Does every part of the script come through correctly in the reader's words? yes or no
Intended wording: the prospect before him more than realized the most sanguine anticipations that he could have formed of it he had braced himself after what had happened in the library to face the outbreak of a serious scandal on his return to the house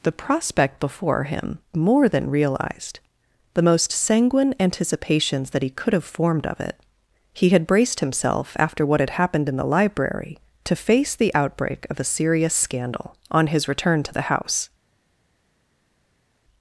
yes